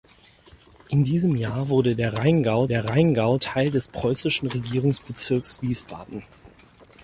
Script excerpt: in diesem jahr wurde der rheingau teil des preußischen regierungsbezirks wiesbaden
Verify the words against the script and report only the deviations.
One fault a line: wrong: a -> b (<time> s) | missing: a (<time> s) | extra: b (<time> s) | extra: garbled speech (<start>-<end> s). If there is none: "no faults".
extra: der rheingau (2.7 s)